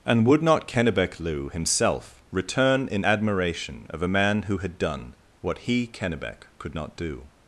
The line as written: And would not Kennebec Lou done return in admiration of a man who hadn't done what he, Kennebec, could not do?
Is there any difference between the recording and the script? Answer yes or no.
yes